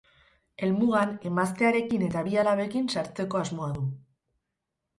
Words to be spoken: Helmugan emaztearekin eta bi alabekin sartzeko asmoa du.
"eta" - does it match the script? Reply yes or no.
yes